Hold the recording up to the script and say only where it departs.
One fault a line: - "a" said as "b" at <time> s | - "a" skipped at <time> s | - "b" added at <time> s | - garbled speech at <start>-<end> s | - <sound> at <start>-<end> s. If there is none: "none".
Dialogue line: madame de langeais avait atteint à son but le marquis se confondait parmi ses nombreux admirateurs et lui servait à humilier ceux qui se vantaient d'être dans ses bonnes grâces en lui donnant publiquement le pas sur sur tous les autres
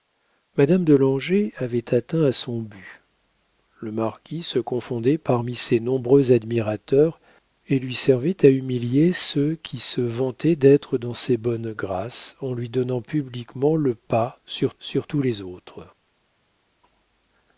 none